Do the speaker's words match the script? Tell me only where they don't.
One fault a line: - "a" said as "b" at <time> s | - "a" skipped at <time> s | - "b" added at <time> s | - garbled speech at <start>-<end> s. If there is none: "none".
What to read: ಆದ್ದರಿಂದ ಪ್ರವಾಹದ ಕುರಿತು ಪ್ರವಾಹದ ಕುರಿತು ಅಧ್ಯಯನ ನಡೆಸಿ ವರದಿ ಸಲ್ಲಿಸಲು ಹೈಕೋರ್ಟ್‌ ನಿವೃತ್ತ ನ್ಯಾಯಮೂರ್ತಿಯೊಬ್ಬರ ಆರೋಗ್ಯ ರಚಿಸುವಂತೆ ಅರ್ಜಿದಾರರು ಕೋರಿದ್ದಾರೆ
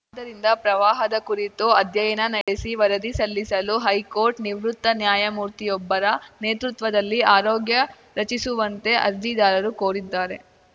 - "ಪ್ರವಾಹದ ಕುರಿತು" skipped at 1.6 s
- "ನೇತೃತ್ವದಲ್ಲಿ" added at 6.4 s